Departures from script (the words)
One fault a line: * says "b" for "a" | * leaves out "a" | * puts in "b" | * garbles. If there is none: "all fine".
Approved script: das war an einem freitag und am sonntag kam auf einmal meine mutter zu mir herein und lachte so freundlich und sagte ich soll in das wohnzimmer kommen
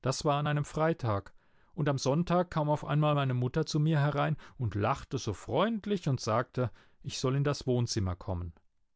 all fine